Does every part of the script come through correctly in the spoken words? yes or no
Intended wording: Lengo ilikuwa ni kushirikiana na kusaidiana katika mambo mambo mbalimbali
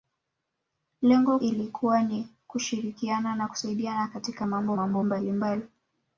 yes